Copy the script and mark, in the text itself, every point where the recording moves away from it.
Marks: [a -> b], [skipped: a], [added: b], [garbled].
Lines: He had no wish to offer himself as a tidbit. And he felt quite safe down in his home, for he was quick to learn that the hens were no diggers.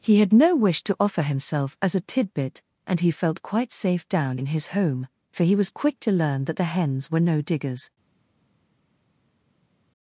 He had no wish to offer himself as a tidbit. And he felt quite safe down in his home, for he was quick to learn that the hens were no diggers.